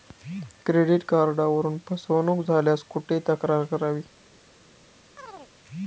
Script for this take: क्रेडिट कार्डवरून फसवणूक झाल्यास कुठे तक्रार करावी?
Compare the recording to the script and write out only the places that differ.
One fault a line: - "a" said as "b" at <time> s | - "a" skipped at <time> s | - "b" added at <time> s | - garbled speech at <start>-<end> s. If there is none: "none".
none